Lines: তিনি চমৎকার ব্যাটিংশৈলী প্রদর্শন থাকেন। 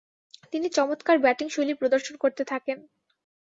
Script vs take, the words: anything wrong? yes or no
yes